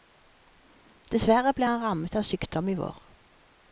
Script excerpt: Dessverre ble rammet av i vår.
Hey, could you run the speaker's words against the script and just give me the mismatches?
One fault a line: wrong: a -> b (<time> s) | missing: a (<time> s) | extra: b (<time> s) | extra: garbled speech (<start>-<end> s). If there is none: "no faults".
extra: han (1.7 s)
extra: sykdom (2.3 s)